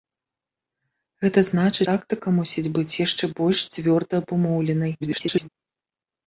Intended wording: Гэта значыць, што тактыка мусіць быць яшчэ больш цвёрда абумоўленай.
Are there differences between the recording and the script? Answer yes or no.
yes